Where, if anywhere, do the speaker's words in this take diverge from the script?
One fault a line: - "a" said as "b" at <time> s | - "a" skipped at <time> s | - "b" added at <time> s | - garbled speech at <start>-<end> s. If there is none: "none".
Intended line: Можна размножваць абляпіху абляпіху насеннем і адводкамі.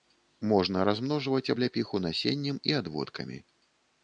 - "абляпіху" skipped at 2.0 s